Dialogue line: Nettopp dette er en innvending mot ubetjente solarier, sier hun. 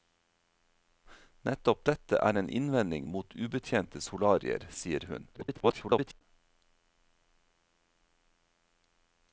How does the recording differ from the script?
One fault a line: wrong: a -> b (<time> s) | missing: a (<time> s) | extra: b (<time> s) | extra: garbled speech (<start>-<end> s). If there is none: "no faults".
extra: garbled speech (5.3-6.2 s)